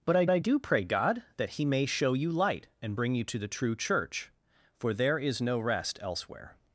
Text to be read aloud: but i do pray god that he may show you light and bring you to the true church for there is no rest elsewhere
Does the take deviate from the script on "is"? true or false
false